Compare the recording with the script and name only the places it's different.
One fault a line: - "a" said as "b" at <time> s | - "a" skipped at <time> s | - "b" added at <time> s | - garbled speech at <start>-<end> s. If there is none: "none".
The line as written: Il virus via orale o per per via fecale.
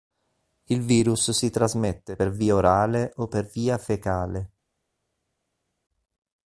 - "si trasmette per" added at 1.3 s
- "per" skipped at 3.5 s